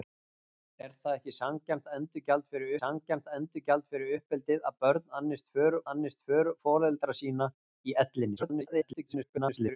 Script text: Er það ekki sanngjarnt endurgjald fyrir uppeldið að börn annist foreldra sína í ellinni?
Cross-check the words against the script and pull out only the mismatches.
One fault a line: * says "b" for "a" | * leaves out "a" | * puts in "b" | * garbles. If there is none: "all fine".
* puts in "sanngjarnt endurgjald fyrir"
* puts in "annist"
* garbles